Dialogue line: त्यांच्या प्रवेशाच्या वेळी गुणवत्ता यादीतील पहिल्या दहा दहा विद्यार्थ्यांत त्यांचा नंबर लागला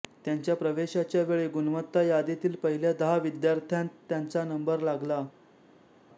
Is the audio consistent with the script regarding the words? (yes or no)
no